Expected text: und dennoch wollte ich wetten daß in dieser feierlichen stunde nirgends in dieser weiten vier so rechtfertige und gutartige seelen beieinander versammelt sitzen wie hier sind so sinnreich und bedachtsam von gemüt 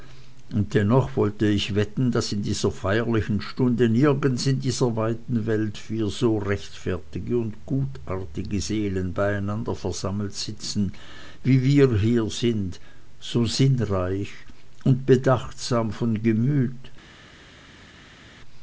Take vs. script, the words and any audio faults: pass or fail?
fail